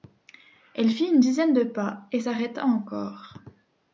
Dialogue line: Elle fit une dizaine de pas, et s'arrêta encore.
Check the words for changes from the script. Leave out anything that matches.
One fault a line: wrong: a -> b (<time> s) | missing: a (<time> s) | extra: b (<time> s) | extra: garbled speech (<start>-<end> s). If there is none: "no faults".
no faults